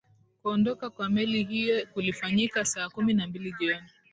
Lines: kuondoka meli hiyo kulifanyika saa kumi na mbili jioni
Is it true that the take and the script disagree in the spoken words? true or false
true